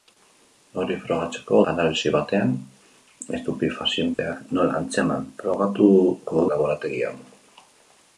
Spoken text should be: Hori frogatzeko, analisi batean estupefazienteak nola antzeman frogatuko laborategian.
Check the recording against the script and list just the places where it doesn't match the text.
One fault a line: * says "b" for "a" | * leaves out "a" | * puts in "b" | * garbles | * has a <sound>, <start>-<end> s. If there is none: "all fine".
* has a dropout, 4.1-4.2 s